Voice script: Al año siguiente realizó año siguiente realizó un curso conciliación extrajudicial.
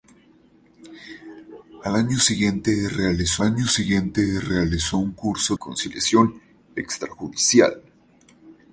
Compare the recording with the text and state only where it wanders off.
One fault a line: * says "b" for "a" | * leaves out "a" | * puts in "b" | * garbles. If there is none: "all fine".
all fine